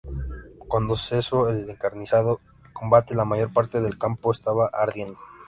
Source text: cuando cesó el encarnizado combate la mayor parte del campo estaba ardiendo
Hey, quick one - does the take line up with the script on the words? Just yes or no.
yes